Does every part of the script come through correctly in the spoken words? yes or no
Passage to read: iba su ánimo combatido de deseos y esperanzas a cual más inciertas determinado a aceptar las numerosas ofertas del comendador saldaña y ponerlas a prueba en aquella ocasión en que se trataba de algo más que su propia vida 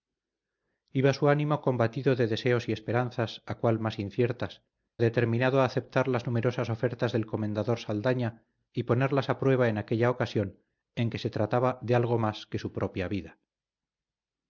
yes